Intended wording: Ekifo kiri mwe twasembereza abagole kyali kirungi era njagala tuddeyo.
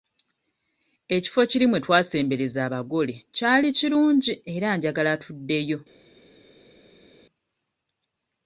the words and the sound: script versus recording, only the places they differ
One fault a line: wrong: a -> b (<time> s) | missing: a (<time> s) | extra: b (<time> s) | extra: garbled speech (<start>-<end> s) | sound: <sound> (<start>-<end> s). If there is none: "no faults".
no faults